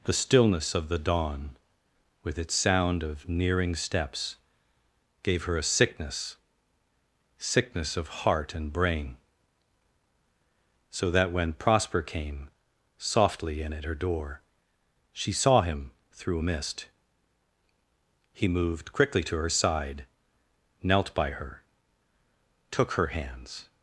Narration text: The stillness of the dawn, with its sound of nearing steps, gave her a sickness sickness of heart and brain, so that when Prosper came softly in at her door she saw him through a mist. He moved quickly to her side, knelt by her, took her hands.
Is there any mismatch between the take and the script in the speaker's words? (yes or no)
no